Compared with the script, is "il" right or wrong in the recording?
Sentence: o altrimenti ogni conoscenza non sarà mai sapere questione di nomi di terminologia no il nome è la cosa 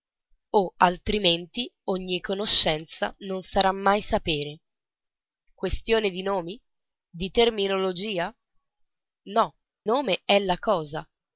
wrong